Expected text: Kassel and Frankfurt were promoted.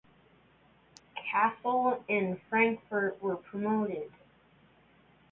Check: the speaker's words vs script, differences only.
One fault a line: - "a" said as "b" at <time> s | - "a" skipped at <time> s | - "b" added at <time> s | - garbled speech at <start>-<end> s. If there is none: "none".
none